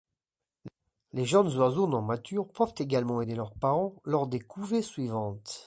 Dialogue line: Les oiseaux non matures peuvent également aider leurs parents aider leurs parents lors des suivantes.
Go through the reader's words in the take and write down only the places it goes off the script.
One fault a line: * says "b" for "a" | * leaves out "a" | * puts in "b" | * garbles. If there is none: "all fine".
* puts in "jeunes"
* leaves out "aider leurs parents"
* puts in "couvées"